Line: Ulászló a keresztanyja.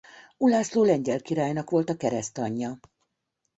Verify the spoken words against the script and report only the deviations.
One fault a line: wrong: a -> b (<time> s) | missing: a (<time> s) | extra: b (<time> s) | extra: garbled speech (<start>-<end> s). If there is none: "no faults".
extra: lengyel királynak volt (0.8 s)